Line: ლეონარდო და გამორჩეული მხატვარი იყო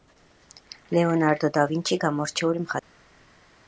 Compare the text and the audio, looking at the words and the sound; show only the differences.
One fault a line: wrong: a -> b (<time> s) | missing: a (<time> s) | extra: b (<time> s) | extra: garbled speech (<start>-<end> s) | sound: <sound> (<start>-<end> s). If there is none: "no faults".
extra: ვინჩი (1.7 s)